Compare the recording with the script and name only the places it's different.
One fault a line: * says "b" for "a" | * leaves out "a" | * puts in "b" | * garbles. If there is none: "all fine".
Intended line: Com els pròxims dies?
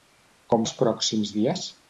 all fine